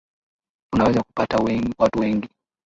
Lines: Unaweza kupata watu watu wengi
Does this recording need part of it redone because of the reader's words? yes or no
yes